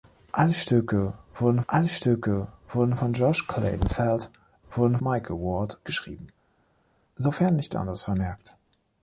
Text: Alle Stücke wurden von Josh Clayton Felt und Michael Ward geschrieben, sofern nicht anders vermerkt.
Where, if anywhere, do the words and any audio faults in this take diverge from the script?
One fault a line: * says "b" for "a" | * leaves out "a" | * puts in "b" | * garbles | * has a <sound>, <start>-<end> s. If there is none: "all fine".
* puts in "alle Stücke wurden"
* says "wurden" for "und"